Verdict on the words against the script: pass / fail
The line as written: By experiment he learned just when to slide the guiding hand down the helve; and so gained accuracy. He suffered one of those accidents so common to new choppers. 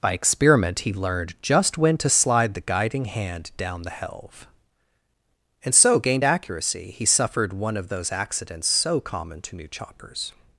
pass